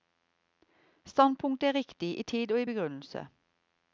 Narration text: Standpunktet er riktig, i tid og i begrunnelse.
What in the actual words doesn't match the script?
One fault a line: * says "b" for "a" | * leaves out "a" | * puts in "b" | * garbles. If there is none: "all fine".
all fine